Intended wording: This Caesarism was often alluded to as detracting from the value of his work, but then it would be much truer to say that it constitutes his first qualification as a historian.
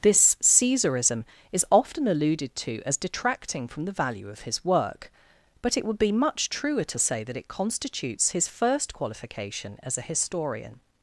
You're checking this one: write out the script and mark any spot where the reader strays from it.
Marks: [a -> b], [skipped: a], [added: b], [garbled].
This Caesarism [was -> is] often alluded to as detracting from the value of his work, but [skipped: then] it would be much truer to say that it constitutes his first qualification as a historian.